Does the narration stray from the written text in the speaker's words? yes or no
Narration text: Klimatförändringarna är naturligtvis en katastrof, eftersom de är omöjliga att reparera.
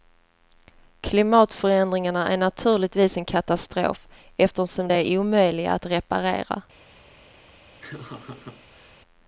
no